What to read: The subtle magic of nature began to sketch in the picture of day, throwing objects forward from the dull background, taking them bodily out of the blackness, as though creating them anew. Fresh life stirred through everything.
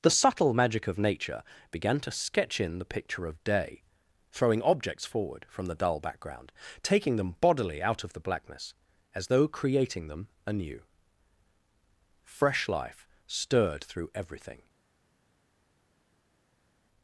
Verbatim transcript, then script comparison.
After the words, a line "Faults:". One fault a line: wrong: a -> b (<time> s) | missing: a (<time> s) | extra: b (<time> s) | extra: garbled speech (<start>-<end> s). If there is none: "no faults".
The subtle magic of nature began to sketch in the picture of day, throwing objects forward from the dull background, taking them bodily out of the blackness, as though creating them anew. Fresh life stirred through everything.
Faults:
no faults